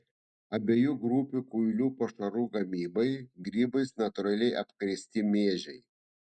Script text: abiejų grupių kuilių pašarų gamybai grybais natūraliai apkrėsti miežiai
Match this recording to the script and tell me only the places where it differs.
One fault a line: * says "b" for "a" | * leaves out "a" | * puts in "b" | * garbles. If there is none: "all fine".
all fine